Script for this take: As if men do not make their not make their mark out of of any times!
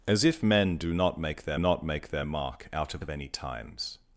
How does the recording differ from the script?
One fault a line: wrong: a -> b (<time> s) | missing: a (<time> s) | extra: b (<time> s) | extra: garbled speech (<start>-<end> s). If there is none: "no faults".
no faults